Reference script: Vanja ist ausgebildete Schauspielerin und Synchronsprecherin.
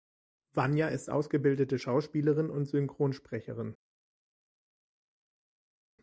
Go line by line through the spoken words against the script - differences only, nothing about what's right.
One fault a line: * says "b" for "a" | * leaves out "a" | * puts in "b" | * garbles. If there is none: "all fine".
all fine